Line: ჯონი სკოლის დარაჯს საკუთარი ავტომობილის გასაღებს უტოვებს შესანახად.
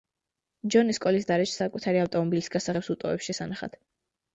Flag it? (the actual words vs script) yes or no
no